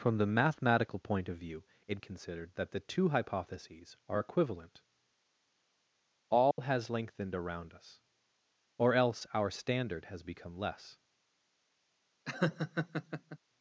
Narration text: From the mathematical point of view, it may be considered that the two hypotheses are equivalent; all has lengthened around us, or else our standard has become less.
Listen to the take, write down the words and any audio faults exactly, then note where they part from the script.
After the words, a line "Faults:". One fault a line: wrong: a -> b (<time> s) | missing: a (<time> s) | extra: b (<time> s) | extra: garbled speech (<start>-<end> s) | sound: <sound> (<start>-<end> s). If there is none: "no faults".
From the mathematical point of view, it considered that the two hypotheses are equivalent; all has lengthened around us, or else our standard has become less.
Faults:
missing: may be (2.0 s)
sound: dropout (6.5-6.6 s)
sound: laugh (12.2-13.4 s)